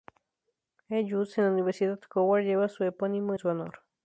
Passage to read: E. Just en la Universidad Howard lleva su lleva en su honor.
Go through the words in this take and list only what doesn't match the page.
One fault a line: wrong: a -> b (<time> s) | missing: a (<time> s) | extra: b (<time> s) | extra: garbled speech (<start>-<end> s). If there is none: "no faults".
wrong: lleva -> epónimo (2.8 s)